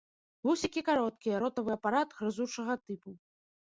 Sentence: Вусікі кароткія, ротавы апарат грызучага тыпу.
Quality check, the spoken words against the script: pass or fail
pass